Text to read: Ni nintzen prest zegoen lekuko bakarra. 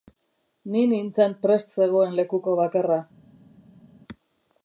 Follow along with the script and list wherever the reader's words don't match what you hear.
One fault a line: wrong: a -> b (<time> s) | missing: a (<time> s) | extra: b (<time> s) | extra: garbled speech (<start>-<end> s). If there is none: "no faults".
no faults